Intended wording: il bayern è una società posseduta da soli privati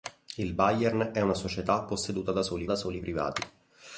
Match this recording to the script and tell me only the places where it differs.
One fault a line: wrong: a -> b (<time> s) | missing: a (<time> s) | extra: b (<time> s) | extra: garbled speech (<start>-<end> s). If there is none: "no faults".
extra: da soli (2.6 s)